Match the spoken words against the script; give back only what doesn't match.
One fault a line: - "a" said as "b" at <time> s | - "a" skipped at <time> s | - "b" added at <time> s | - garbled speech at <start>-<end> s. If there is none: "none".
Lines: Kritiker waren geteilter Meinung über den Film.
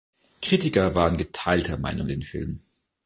- "über" skipped at 2.1 s